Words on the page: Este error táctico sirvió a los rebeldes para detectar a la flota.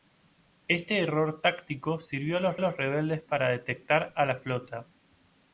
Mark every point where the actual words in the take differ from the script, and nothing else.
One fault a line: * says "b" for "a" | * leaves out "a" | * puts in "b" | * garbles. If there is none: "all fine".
* puts in "los"